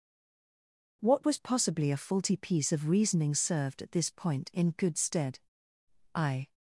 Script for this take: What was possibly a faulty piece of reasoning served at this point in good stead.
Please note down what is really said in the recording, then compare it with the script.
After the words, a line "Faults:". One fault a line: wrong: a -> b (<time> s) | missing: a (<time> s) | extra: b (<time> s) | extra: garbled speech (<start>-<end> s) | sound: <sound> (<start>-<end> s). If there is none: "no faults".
What was possibly a faulty piece of reasoning served at this point in good stead. I
Faults:
extra: I (6.2 s)